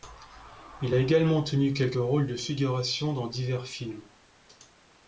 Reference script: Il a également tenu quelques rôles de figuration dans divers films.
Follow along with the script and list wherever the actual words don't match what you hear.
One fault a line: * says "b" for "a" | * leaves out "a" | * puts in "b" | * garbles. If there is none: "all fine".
all fine